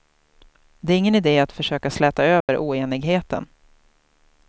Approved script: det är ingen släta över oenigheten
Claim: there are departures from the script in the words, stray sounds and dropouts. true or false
true